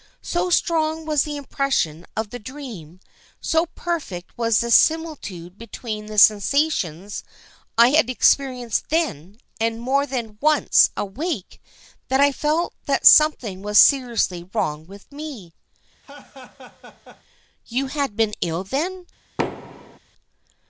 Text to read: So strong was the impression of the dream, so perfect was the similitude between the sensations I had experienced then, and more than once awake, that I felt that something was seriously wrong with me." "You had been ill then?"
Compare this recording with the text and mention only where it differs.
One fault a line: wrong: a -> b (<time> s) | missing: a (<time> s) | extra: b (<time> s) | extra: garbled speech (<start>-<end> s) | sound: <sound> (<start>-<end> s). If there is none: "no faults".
sound: laugh (16.0-17.2 s)
sound: thud (19.4-20.0 s)